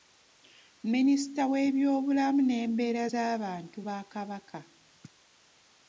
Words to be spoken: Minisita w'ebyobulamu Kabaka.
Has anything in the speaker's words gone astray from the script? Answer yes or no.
yes